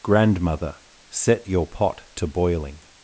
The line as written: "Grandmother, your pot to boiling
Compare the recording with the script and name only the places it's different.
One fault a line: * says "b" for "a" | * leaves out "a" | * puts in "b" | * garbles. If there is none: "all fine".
* puts in "set"